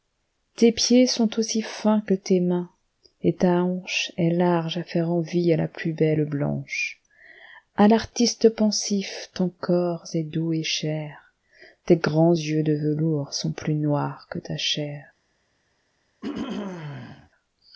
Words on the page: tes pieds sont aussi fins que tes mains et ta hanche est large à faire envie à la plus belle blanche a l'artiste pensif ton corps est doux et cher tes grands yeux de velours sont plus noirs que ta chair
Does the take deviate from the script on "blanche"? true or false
false